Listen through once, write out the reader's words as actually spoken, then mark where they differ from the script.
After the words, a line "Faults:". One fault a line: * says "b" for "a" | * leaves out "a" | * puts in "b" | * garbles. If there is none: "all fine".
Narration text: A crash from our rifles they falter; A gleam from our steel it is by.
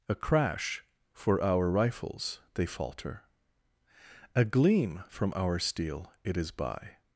A crash for our rifles they falter; A gleam from our steel it is by.
Faults:
* says "for" for "from"